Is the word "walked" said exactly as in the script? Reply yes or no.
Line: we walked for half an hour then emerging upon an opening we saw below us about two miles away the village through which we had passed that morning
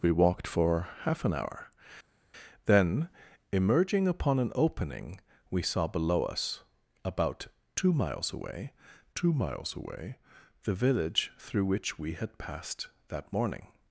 yes